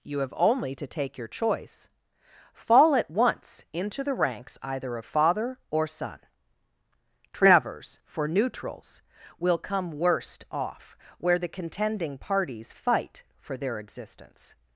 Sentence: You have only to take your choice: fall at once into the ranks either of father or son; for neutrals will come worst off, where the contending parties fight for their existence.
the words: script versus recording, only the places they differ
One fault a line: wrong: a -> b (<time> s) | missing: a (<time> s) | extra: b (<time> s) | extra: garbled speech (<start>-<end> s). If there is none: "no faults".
extra: travers (7.3 s)